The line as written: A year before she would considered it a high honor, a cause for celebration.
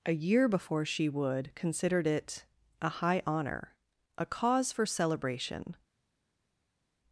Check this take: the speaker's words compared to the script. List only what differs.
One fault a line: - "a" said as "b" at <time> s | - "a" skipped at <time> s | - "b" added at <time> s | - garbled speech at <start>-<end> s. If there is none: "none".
none